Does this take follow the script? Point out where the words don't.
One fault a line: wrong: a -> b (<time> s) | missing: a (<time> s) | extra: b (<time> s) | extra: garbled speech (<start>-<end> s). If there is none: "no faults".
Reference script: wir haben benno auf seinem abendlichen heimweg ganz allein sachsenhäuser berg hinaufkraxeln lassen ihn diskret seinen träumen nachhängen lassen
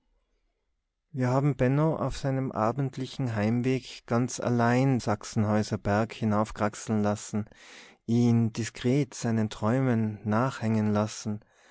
no faults